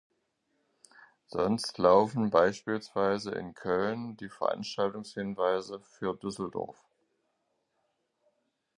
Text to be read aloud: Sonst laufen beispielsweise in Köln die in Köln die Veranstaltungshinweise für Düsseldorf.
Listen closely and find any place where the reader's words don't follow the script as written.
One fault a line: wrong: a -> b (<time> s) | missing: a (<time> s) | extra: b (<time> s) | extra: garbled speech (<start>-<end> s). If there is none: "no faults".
missing: in Köln die (4.3 s)